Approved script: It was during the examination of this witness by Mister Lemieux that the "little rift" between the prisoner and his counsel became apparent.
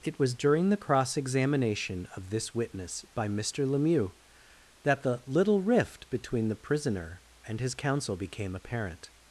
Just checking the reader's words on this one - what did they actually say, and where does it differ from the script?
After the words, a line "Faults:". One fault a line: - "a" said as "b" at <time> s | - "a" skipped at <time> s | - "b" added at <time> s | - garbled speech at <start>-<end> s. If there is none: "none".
It was during the cross examination of this witness by Mister Lemieux that the "little rift" between the prisoner and his counsel became apparent.
Faults:
- "cross" added at 0.8 s